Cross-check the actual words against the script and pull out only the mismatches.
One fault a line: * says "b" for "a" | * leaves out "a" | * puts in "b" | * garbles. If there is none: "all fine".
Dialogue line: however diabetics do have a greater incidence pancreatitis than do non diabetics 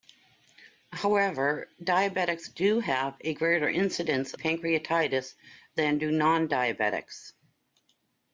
all fine